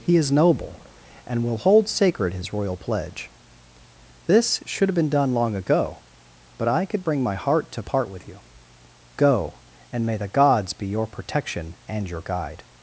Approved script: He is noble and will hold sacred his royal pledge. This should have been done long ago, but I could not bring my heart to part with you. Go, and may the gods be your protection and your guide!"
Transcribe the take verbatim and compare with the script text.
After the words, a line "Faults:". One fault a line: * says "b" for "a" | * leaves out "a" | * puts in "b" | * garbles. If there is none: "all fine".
He is noble and will hold sacred his royal pledge. This should have been done long ago, but I could bring my heart to part with you. Go, and may the gods be your protection and your guide!"
Faults:
* leaves out "not"